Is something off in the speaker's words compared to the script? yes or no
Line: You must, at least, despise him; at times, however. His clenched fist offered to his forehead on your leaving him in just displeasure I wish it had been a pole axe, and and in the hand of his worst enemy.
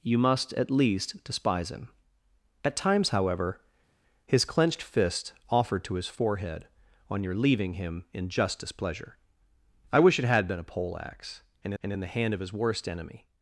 no